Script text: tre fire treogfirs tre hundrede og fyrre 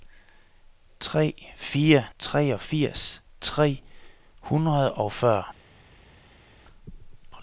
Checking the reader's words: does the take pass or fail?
pass